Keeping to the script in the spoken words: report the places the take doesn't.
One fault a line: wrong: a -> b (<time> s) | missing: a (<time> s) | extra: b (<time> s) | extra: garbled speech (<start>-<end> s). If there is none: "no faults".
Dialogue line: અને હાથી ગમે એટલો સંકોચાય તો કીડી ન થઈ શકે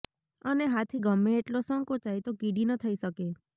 no faults